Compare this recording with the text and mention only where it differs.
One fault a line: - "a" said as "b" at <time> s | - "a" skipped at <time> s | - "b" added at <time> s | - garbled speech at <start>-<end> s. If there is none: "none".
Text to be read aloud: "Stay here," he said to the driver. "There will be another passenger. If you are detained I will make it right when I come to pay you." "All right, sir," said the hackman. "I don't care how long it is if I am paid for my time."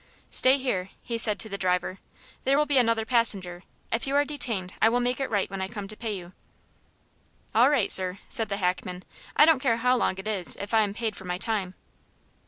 none